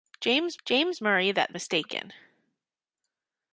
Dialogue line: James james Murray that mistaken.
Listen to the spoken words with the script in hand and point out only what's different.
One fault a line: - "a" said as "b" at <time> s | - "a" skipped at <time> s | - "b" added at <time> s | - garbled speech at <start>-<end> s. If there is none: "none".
none